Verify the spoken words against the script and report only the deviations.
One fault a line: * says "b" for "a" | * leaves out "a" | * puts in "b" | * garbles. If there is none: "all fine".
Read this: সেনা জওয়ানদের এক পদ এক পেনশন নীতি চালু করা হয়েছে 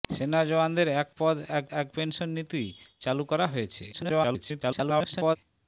* puts in "এক"
* garbles